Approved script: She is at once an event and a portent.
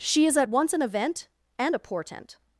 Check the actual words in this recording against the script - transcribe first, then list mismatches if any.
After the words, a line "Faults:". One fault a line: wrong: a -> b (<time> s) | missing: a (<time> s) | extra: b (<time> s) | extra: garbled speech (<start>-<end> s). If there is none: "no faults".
She is at once an event and a portent.
Faults:
no faults